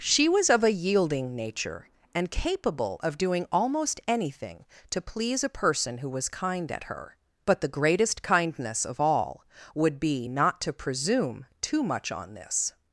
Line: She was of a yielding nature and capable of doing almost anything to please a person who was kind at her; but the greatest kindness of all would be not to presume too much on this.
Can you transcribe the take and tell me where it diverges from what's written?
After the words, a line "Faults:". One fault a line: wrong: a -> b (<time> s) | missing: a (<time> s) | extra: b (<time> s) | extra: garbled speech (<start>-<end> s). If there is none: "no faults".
She was of a yielding nature and capable of doing almost anything to please a person who was kind at her; but the greatest kindness of all would be not to presume too much on this.
Faults:
no faults